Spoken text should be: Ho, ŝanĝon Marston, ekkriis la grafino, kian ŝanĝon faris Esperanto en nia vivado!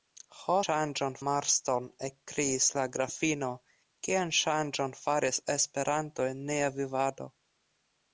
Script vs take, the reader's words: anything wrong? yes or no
no